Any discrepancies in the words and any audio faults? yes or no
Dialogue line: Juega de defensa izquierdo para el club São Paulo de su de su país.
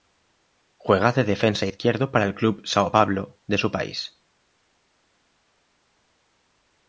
yes